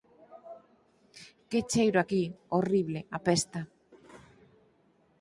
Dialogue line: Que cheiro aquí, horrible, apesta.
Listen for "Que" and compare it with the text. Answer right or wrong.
right